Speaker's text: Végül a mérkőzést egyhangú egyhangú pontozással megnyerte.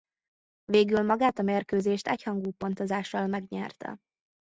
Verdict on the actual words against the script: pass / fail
fail